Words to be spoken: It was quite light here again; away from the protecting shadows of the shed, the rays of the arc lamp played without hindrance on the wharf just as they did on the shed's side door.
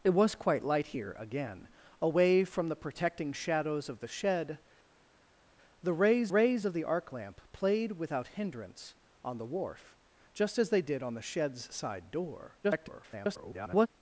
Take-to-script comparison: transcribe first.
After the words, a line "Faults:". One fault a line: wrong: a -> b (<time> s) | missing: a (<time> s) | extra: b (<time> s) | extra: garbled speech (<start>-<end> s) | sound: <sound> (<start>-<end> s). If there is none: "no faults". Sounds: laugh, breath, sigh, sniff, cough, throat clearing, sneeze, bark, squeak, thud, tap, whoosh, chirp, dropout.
It was quite light here again; away from the protecting shadows of the shed, the rays rays of the arc lamp played without hindrance on the wharf just as they did on the shed's side door. [garbled]
Faults:
extra: rays (6.3 s)
extra: garbled speech (12.6-13.9 s)